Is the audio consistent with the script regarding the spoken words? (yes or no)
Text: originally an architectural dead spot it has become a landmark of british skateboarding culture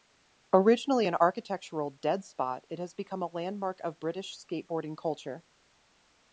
yes